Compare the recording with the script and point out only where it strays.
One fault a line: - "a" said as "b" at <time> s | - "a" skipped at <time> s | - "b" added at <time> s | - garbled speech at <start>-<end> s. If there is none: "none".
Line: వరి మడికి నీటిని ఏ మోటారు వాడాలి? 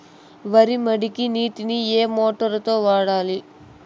- "తో" added at 2.6 s